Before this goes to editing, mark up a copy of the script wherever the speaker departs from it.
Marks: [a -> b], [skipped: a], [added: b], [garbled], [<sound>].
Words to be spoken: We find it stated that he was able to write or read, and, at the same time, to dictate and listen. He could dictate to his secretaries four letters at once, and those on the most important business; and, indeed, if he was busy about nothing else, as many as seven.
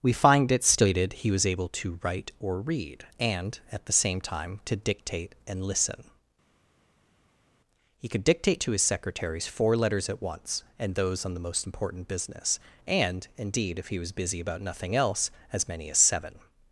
We find it stated [skipped: that] he was able to write or read, and, at the same time, to dictate and listen. He could dictate to his secretaries four letters at once, and those on the most important business; and, indeed, if he was busy about nothing else, as many as seven.